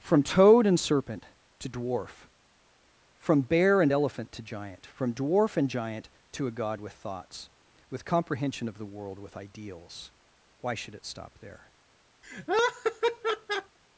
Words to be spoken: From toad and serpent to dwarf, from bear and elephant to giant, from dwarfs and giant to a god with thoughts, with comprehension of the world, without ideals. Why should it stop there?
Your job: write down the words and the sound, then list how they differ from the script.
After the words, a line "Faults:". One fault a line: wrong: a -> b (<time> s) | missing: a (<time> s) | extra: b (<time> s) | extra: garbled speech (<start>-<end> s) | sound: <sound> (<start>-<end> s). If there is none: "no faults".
From toad and serpent to dwarf, from bear and elephant to giant, from dwarf and giant to a god with thoughts, with comprehension of the world, with ideals. Why should it stop there?
Faults:
wrong: dwarfs -> dwarf (5.1 s)
wrong: without -> with (9.2 s)
sound: laugh (12.2-13.8 s)